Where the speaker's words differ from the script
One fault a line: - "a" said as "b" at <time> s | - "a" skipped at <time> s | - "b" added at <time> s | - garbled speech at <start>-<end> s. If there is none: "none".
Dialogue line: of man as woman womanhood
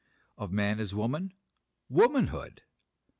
none